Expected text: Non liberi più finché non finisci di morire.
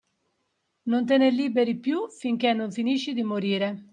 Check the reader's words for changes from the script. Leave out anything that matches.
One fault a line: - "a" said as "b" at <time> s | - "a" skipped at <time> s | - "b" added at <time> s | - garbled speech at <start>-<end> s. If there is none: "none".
- "te ne" added at 1.1 s